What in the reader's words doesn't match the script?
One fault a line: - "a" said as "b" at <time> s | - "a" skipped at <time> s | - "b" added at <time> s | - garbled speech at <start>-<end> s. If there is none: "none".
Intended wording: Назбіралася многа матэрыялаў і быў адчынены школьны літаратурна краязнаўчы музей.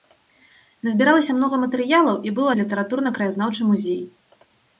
- "адчынены школьны" skipped at 2.5 s